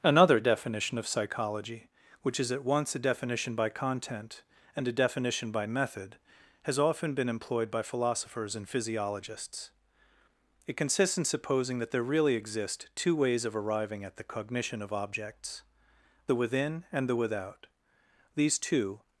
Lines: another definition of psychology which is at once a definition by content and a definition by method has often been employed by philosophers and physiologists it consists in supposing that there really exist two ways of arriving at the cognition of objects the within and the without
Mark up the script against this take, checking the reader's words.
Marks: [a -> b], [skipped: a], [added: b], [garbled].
another definition of psychology which is at once a definition by content and a definition by method has often been employed by philosophers and physiologists it consists in supposing that there really exist two ways of arriving at the cognition of objects the within and the without [added: these two]